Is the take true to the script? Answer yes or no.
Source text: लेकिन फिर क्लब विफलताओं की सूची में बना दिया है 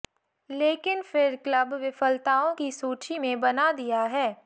yes